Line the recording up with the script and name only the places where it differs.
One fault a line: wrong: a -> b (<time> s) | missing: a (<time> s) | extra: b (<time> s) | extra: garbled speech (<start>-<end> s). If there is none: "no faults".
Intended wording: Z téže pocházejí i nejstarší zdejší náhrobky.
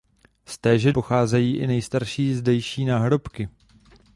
no faults